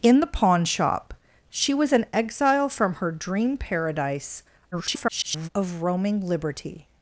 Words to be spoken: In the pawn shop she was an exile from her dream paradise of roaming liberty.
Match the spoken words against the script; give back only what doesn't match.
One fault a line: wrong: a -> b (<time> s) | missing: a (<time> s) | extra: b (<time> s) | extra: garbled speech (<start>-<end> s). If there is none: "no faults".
extra: garbled speech (4.7-5.5 s)